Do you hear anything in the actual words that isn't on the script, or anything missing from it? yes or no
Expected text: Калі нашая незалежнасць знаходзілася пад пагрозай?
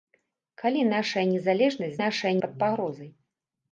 yes